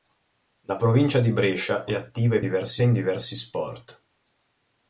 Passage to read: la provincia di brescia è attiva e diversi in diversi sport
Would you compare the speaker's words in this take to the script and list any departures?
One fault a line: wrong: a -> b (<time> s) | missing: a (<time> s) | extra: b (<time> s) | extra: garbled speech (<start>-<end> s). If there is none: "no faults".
no faults